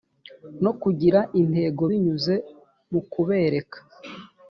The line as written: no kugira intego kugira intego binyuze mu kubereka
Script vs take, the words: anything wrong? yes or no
yes